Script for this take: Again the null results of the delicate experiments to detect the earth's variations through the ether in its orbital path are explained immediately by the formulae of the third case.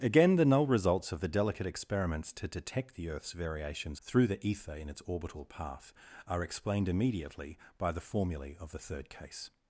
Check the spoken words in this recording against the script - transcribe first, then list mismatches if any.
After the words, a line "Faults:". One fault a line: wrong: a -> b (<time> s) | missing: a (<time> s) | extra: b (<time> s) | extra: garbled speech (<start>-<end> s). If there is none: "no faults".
Again the null results of the delicate experiments to detect the earth's variations through the ether in its orbital path are explained immediately by the formulae of the third case.
Faults:
no faults